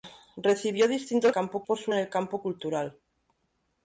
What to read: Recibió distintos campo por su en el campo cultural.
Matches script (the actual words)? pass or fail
pass